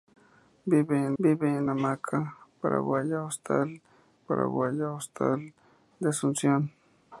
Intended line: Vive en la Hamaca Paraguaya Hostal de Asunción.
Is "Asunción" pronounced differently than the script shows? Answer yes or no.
no